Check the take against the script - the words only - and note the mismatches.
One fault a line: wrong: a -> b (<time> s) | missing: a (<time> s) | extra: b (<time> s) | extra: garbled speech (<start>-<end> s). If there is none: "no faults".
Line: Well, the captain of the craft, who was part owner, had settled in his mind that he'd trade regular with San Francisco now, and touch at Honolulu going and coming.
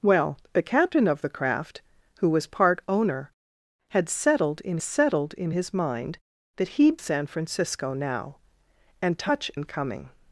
extra: settled in (4.8 s)
missing: trade regular with (7.0 s)
missing: at Honolulu going (9.5 s)